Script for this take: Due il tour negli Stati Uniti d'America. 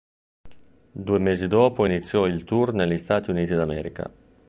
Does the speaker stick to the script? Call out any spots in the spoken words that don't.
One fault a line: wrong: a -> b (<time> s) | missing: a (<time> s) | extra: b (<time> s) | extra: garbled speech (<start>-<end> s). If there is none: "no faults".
extra: mesi dopo iniziò (1.2 s)